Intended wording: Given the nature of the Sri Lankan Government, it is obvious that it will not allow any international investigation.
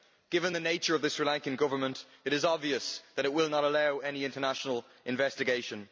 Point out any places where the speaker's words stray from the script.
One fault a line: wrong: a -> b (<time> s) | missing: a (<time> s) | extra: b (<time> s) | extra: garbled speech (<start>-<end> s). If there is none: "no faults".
no faults